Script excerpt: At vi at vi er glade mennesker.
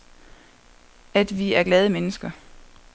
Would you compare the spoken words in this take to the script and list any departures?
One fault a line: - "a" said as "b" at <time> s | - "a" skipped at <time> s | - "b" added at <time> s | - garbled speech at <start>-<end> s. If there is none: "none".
- "at vi" skipped at 1.5 s